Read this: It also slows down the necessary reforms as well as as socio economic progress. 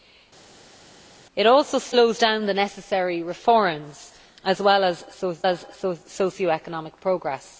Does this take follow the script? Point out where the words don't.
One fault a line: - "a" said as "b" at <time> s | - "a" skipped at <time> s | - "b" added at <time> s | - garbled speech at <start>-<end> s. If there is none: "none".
none